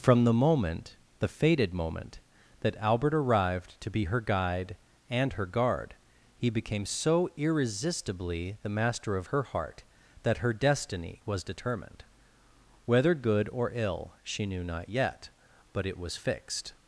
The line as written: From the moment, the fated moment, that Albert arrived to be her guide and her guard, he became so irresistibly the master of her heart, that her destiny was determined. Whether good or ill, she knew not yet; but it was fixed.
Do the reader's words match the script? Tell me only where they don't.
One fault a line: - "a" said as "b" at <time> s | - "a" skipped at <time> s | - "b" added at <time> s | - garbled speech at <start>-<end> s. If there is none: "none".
none